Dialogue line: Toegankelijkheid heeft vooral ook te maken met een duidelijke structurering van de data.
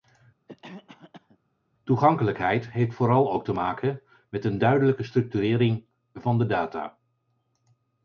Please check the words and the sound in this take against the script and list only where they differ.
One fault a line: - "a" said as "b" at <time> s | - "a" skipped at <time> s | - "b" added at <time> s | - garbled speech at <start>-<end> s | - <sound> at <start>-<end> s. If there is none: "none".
- cough at 0.5-1.4 s